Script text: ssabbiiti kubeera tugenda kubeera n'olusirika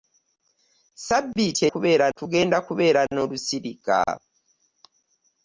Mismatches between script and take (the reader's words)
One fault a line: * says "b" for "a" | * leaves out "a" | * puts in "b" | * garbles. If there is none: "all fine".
all fine